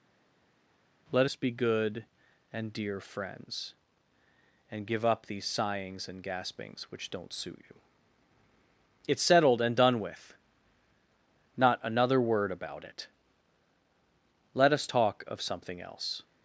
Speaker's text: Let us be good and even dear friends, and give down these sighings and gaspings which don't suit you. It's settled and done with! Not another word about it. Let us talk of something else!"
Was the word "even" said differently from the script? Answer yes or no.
yes